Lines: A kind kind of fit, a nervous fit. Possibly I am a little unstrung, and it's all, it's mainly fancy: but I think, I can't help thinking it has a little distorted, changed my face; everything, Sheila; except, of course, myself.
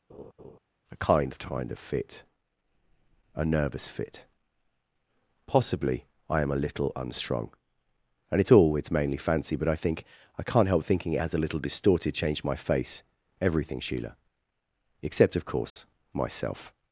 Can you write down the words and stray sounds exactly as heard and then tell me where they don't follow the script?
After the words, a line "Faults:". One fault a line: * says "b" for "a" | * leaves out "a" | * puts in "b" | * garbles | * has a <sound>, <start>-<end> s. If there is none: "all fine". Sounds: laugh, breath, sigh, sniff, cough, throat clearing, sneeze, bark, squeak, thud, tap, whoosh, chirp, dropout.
A kind kind of fit, a nervous fit. Possibly I am a little unstrung, and it's all, it's mainly fancy: but I think, I can't help thinking it has a little distorted, changed my face; everything, Sheila; except, of course, myself.
Faults:
* has a laugh, 0.1-0.6 s
* has a dropout, 15.7-15.8 s